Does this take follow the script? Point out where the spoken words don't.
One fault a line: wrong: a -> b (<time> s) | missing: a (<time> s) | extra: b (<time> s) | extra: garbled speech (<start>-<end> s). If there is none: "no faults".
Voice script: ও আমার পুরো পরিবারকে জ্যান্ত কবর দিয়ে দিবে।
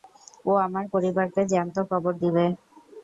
missing: পুরো (0.8 s)
missing: দিয়ে (2.1 s)